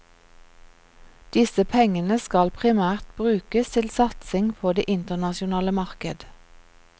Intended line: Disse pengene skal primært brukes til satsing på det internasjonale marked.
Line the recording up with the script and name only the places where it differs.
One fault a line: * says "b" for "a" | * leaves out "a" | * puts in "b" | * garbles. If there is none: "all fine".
all fine